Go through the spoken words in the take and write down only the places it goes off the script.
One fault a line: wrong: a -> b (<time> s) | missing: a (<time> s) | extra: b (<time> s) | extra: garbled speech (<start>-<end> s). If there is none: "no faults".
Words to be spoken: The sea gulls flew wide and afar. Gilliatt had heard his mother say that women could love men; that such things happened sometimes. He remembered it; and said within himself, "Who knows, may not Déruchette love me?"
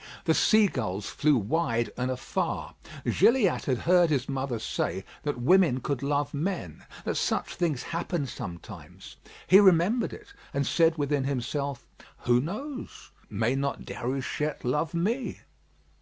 no faults